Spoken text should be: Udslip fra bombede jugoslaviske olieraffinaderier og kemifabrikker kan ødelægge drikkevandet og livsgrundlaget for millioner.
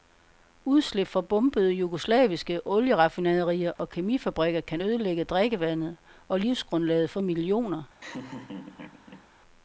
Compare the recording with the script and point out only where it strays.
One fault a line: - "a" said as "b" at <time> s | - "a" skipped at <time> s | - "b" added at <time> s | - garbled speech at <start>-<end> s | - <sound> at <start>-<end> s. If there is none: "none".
- dropout at 3.8-3.8 s
- laugh at 8.0-9.3 s